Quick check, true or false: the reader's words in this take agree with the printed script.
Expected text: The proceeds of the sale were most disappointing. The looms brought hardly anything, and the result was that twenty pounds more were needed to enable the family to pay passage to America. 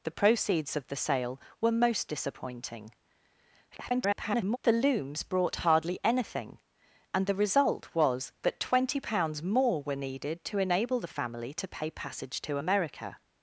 false